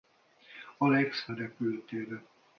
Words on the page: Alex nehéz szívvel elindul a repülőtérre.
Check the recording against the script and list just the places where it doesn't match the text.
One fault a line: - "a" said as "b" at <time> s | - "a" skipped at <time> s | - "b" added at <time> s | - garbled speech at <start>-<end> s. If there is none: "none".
- "nehéz szívvel elindul" skipped at 1.3 s